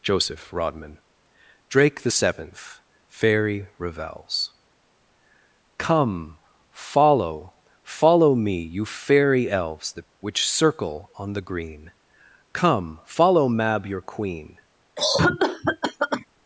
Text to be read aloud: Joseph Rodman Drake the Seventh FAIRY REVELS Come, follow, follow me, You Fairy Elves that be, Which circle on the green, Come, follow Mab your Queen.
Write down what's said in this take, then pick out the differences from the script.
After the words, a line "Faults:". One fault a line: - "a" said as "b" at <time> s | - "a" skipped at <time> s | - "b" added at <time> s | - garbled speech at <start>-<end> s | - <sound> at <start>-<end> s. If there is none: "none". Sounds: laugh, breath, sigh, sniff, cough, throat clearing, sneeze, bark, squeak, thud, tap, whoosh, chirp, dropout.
Joseph Rodman Drake the Seventh FAIRY REVELS Come, follow, follow me, You Fairy Elves that Which circle on the green, Come, follow Mab your Queen.
Faults:
- "be" skipped at 10.1 s
- cough at 15.0-16.3 s